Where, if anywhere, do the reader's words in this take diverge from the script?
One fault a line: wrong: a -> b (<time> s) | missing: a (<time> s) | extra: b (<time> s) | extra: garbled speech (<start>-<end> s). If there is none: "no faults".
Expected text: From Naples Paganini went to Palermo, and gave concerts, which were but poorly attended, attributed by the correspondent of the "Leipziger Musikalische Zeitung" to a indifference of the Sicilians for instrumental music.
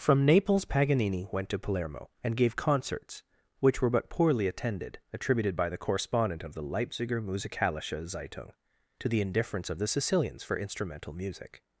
wrong: a -> the (9.1 s)